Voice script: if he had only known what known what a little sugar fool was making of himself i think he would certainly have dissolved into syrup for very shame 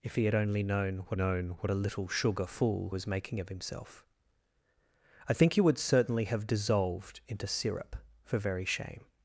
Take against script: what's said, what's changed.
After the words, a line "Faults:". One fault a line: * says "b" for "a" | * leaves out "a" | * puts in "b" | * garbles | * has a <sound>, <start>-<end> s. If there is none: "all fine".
if he had only known what known what a little sugar fool was making of himself i think he would certainly have dissolved into syrup for very shame
Faults:
all fine